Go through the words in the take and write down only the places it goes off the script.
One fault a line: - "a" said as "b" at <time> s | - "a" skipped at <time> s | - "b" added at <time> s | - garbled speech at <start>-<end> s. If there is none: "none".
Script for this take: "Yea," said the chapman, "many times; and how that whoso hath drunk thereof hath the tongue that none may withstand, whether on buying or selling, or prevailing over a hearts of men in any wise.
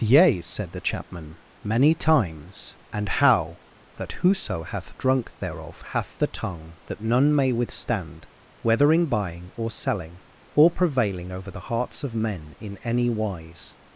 - "on" said as "in" at 8.9 s
- "a" said as "the" at 11.5 s